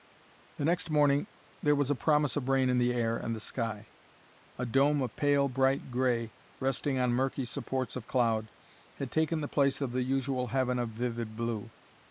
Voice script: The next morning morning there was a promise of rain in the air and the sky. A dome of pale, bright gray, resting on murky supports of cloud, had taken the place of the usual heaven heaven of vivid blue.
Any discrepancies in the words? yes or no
yes